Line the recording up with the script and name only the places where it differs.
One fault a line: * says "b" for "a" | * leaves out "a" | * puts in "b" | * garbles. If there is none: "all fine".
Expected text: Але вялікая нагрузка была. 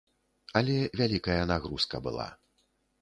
all fine